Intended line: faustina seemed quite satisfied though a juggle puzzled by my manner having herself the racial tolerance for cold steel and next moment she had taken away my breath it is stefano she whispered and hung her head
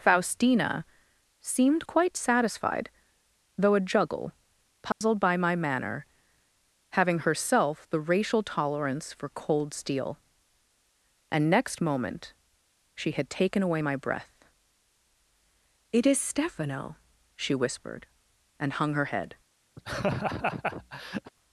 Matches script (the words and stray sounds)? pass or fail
fail